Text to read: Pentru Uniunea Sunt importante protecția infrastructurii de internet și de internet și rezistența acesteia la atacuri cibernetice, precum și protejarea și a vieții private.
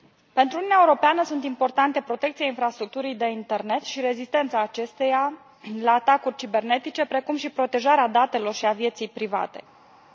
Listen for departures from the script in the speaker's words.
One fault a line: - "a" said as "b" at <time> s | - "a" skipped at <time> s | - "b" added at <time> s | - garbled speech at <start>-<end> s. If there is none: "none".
- "Europeană" added at 0.8 s
- "de internet și" skipped at 4.0 s
- "datelor" added at 8.1 s